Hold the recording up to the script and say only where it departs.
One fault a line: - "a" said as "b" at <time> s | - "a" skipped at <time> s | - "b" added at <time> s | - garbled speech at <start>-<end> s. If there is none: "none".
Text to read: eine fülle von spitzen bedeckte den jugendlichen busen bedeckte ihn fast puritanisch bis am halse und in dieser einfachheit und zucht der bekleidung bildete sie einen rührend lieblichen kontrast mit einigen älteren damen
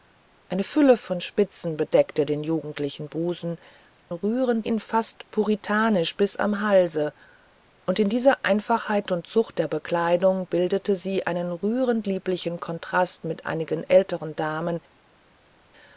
- "bedeckte" said as "rührend" at 4.1 s